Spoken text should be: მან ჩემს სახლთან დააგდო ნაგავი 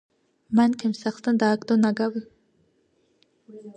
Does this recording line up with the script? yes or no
yes